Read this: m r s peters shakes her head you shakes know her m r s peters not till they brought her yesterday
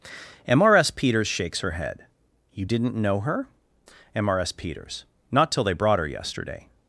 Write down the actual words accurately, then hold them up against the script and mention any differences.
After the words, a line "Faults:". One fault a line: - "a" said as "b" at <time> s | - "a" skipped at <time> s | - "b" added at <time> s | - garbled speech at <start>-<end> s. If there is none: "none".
m r s peters shakes her head you didn't know her m r s peters not till they brought her yesterday
Faults:
- "shakes" said as "didn't" at 2.6 s